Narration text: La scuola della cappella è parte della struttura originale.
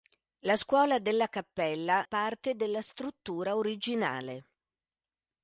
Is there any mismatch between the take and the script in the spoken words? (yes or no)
yes